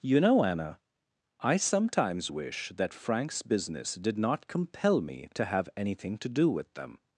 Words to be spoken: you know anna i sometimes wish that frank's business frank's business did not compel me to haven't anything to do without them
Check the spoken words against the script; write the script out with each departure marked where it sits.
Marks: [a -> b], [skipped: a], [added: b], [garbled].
you know anna i sometimes wish that frank's business [skipped: frank's business] did not compel me to [haven't -> have] anything to do [without -> with] them